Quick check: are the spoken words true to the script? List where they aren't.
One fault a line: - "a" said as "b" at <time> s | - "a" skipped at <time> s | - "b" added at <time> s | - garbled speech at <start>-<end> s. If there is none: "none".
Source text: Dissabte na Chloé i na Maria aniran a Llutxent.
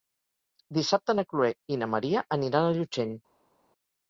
none